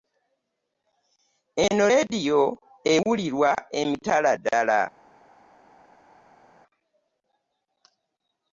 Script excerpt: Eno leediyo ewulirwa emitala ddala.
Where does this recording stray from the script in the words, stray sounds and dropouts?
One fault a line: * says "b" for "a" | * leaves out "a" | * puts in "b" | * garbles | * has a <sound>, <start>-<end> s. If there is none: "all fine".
all fine